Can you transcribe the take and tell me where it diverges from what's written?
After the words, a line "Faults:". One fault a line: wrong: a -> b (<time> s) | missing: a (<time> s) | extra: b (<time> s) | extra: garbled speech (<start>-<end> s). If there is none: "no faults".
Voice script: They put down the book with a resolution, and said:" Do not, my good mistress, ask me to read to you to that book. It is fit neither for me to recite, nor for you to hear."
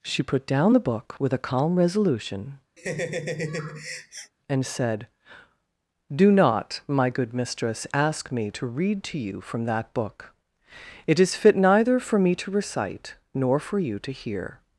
She put down the book with a calm resolution, and said:" Do not, my good mistress, ask me to read to you from that book. It is fit neither for me to recite, nor for you to hear."
Faults:
wrong: They -> She (0.0 s)
extra: calm (1.4 s)
wrong: to -> from (9.4 s)